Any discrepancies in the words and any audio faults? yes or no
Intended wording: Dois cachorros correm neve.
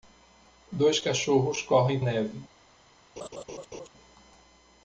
yes